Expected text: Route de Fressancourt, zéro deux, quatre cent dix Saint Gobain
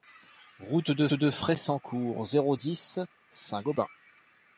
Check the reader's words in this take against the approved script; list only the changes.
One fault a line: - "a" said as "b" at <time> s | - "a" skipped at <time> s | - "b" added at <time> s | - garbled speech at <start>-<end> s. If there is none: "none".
- "de" added at 1.1 s
- "deux quatre cent" skipped at 2.5 s